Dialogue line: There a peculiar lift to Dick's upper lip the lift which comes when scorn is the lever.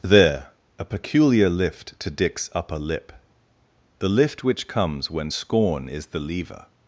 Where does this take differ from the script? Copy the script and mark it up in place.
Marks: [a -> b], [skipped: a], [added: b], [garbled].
There a peculiar lift to Dick's upper lip the lift which comes when scorn is the lever.